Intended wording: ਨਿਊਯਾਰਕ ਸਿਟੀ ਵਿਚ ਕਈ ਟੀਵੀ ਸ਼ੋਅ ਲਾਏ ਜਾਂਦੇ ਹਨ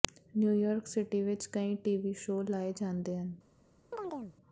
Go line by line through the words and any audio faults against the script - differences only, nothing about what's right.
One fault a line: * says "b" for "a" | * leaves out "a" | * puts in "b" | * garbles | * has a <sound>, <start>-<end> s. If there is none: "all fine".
* has a chirp, 3.9-4.4 s